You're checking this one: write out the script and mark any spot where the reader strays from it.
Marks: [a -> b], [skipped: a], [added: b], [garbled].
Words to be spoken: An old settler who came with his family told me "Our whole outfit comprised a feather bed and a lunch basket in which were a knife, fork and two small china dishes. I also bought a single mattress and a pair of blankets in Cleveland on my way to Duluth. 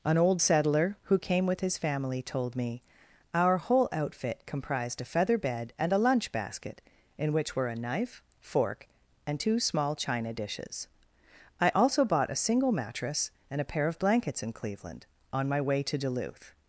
An old settler who came with his family told me "Our whole outfit comprised a feather bed and a lunch basket in which were a knife, fork and two small china dishes. I also bought a single mattress and a pair of blankets in Cleveland on my way to Duluth.